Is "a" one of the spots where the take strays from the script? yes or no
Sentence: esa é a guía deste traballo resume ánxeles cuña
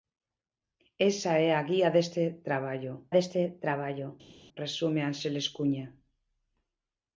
no